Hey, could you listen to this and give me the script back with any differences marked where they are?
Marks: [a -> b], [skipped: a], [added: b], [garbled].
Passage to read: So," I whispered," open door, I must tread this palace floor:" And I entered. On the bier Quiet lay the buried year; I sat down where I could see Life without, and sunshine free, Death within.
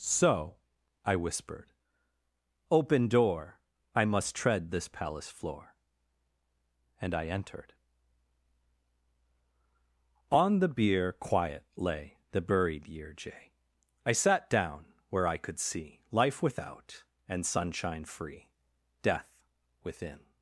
So," I whispered," open door, I must tread this palace floor:" And I entered. On the bier Quiet lay the buried year; [added: jay] I sat down where I could see Life without, and sunshine free, Death within.